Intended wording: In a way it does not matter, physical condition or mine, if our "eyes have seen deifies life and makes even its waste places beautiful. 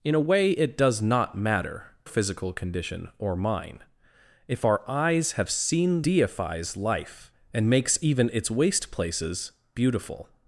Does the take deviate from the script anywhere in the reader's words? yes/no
no